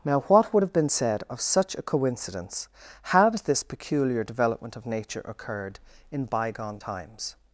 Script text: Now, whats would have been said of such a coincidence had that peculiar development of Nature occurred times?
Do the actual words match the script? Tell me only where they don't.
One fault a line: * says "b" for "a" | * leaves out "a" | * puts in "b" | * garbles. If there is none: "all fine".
* says "what" for "whats"
* says "this" for "that"
* puts in "in bygone"